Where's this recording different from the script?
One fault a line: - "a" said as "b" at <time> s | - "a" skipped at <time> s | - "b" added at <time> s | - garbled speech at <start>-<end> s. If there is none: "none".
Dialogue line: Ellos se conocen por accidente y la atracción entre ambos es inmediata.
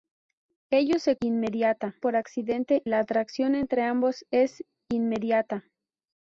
- "conocen" said as "inmediata" at 1.2 s
- "y" skipped at 2.8 s